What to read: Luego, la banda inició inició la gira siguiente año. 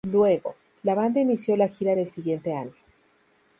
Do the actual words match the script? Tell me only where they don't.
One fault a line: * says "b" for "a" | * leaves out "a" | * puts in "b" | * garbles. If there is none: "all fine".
* leaves out "inició"
* puts in "del"